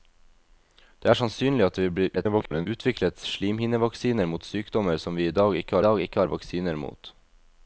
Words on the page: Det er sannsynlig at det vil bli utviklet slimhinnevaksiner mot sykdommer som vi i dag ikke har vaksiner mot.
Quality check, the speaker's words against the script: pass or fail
fail